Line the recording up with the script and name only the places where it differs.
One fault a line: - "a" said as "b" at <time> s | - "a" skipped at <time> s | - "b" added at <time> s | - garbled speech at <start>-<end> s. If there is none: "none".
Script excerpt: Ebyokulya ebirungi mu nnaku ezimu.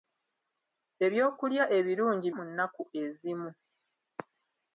none